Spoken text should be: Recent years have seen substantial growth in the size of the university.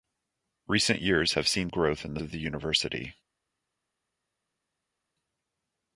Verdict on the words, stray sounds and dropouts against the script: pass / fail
fail